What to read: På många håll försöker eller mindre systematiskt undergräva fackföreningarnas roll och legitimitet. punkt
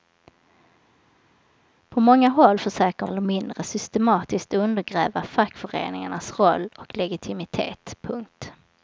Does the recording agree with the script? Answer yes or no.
yes